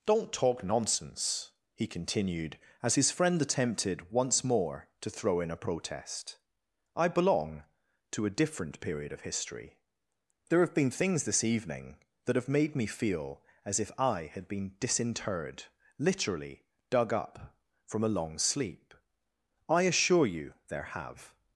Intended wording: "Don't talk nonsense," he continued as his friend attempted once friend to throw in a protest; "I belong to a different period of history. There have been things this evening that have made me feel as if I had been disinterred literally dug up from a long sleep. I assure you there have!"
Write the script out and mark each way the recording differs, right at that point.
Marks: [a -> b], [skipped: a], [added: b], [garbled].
"Don't talk nonsense," he continued as his friend attempted once [friend -> more] to throw in a protest; "I belong to a different period of history. There have been things this evening that have made me feel as if I had been disinterred literally dug up from a long sleep. I assure you there have!"